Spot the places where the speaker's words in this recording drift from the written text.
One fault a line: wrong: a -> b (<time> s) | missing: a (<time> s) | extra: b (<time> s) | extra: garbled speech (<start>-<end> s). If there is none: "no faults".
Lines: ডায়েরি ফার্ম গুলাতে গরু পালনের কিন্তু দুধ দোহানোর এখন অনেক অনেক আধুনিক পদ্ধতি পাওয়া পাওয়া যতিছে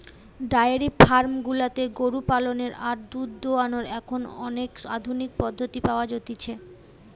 wrong: কিন্তু -> আর (2.8 s)
missing: অনেক (4.7 s)
missing: পাওয়া (6.1 s)